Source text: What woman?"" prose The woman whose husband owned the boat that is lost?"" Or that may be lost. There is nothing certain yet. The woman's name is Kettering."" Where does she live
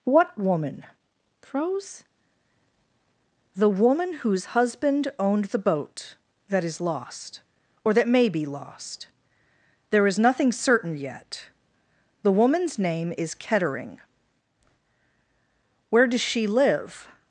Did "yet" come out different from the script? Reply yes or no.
no